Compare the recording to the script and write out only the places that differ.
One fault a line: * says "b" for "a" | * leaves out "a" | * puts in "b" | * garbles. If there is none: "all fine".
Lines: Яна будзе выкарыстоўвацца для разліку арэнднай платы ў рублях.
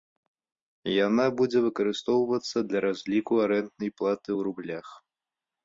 all fine